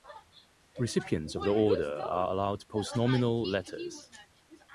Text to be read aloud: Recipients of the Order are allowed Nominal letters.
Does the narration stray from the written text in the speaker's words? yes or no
yes